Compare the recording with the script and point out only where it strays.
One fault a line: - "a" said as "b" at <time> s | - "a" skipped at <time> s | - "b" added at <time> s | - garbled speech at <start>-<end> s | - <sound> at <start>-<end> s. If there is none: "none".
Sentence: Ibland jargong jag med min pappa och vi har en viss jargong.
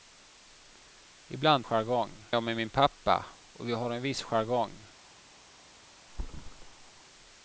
- thud at 6.1-7.0 s